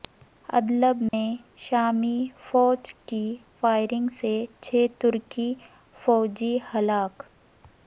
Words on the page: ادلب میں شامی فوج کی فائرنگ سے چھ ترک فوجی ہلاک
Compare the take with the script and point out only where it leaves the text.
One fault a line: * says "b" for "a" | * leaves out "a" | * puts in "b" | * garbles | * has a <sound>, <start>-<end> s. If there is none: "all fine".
* has a dropout, 1.1-1.1 s